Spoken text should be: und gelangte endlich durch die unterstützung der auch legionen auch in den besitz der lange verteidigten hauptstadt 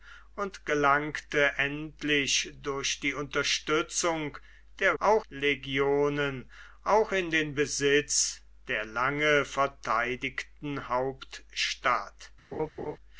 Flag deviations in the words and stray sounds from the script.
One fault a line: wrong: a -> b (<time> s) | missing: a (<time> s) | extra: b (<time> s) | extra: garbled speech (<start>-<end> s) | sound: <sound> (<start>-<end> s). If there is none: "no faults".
sound: laugh (12.5-13.0 s)